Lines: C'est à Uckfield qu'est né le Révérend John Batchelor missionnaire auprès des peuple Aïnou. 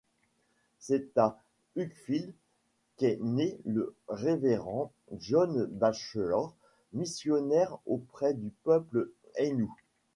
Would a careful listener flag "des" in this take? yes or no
yes